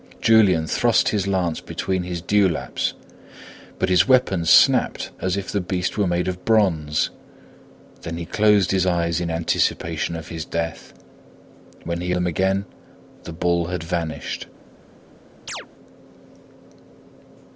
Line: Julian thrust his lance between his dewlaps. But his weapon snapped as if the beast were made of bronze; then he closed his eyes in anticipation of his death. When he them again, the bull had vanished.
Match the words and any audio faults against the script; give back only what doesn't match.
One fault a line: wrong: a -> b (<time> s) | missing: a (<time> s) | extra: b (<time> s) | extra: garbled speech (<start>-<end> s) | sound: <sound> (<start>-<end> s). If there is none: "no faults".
sound: chirp (15.5-15.7 s)